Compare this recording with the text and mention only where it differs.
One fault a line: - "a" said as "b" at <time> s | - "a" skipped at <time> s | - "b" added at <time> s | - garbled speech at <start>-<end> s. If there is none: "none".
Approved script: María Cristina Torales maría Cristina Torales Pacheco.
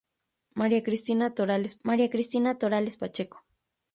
none